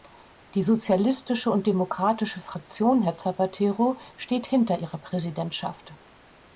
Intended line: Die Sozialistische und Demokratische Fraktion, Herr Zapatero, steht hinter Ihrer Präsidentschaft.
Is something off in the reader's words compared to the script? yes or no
no